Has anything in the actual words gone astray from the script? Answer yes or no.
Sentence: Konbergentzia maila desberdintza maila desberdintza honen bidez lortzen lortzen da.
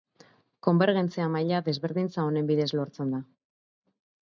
yes